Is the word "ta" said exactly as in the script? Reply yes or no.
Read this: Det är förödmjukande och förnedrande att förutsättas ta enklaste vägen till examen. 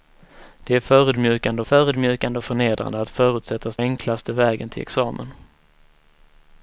no